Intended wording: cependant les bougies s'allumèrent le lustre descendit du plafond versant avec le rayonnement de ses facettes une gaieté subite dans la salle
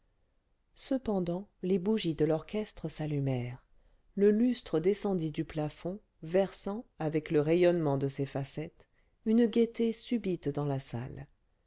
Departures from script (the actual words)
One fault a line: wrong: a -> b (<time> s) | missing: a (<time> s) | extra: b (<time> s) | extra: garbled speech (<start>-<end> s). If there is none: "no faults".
extra: de l'orchestre (2.1 s)